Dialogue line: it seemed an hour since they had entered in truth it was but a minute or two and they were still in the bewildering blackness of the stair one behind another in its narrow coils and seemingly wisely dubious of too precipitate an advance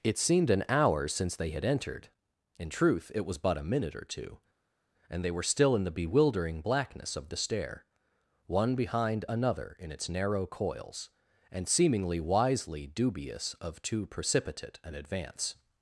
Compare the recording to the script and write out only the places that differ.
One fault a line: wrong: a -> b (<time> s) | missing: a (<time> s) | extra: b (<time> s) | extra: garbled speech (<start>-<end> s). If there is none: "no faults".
no faults